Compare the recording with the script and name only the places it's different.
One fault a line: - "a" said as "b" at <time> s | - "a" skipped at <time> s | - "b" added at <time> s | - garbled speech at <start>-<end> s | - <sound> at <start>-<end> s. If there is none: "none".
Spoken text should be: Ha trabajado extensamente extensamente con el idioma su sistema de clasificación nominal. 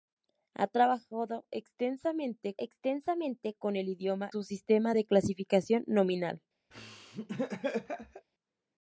- laugh at 6.7-8.3 s